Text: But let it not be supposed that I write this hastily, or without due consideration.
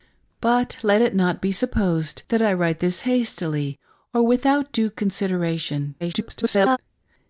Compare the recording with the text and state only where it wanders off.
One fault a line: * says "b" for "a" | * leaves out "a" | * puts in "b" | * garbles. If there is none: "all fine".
* garbles